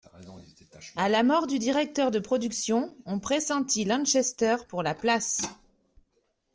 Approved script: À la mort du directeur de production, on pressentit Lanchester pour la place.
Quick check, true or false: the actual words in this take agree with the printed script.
true